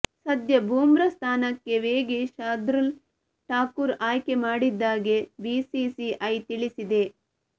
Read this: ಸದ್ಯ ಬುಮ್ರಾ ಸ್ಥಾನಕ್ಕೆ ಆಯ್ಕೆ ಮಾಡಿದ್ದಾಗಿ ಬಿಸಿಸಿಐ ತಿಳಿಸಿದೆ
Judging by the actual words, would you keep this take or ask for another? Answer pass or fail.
fail